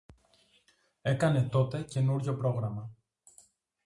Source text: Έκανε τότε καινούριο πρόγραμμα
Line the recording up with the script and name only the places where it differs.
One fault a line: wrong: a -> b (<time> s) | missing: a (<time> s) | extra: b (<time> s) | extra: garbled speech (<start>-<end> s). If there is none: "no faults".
no faults